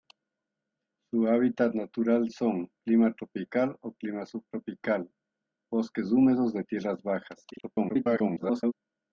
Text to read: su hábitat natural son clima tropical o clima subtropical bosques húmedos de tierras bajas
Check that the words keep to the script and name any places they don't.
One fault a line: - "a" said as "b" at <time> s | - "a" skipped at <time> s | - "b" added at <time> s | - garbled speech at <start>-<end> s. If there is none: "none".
- garbled speech at 7.5-8.7 s